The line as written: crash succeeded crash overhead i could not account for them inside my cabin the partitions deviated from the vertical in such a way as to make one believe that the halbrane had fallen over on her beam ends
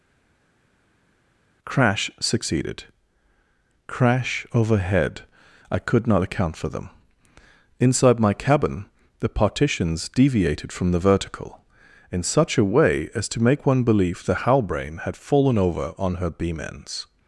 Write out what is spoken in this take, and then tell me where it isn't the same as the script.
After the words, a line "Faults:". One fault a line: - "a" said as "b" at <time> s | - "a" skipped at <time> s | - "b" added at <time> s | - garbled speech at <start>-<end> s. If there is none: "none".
crash succeeded crash overhead i could not account for them inside my cabin the partitions deviated from the vertical in such a way as to make one believe the halbrane had fallen over on her beam ends
Faults:
- "that" skipped at 14.2 s